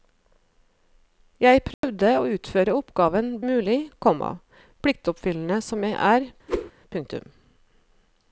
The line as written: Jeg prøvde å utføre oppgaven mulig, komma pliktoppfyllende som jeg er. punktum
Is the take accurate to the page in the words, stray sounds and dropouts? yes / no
no